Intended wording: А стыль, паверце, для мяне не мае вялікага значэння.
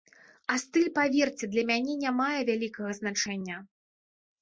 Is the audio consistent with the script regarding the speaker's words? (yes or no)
yes